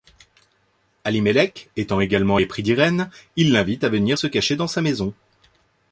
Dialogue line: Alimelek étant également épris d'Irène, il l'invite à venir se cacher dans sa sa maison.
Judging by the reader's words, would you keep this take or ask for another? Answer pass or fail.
fail